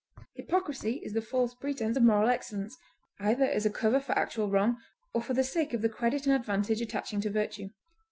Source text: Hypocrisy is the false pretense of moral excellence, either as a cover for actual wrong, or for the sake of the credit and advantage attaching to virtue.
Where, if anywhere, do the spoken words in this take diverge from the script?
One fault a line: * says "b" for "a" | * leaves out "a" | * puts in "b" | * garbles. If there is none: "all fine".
all fine